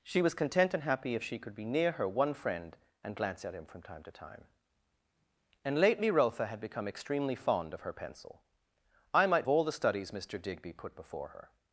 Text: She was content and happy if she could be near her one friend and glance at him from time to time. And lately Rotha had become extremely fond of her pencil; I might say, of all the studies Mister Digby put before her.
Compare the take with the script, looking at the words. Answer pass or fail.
fail